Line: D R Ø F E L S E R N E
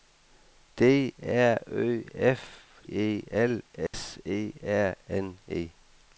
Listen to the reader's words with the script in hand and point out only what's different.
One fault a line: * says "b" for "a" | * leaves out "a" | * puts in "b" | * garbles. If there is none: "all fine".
all fine